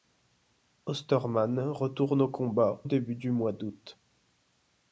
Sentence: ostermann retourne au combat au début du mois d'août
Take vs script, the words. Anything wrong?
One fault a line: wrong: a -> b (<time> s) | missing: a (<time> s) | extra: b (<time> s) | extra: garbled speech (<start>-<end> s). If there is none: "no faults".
missing: au (2.8 s)